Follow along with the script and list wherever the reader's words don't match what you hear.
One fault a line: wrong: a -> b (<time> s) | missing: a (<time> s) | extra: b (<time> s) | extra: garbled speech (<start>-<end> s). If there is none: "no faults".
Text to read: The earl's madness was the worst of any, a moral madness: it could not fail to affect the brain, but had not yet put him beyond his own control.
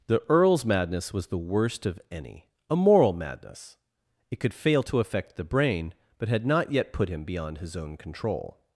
missing: not (4.5 s)